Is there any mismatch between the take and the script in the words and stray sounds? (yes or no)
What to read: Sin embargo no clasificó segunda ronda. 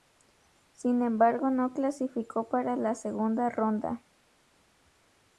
yes